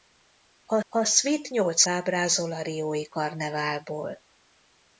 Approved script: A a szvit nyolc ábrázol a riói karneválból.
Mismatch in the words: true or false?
false